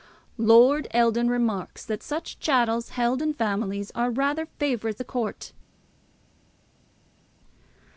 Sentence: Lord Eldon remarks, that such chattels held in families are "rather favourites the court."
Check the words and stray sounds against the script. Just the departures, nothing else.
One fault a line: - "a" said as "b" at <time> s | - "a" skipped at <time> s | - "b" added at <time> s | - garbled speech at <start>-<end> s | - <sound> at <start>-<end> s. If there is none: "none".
none